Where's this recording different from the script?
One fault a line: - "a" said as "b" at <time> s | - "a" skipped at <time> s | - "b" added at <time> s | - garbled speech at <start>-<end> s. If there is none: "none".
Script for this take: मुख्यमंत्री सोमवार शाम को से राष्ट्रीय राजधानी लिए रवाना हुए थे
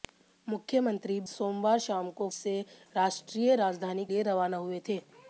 none